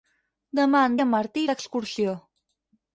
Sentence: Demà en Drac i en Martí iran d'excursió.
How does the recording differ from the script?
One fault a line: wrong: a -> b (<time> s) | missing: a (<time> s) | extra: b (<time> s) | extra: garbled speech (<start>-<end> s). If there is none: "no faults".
missing: Drac (0.9 s)
missing: iran (1.4 s)